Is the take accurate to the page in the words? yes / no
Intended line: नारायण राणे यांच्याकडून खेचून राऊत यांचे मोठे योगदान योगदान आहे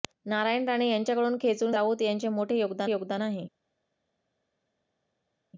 yes